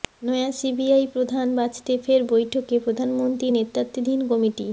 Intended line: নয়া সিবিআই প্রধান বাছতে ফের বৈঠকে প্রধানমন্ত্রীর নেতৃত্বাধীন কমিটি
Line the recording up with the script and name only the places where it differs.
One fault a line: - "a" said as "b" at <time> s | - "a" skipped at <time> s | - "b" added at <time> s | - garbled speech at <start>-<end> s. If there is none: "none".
none